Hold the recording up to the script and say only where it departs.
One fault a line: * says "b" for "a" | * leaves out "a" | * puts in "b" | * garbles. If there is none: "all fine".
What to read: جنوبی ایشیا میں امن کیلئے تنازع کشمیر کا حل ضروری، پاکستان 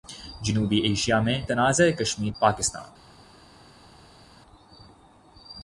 * leaves out "امن کیلئے"
* leaves out "کا حل ضروری"